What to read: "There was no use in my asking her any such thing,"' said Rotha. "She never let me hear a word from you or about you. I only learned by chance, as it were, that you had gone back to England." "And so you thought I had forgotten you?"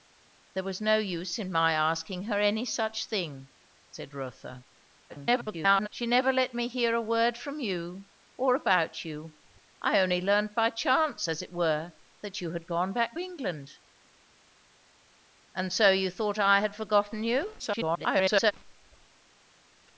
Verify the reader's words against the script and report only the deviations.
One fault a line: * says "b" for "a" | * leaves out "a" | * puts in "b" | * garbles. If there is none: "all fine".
* garbles
* leaves out "to"
* garbles